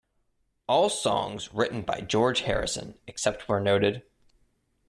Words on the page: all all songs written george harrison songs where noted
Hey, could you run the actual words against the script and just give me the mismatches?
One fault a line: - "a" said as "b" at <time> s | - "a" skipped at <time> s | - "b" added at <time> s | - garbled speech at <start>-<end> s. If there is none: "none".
- "all" skipped at 0.9 s
- "by" added at 1.8 s
- "songs" said as "except" at 3.0 s